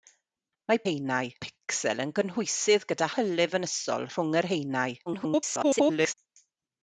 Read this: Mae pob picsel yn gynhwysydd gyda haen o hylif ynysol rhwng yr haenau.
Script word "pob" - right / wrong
wrong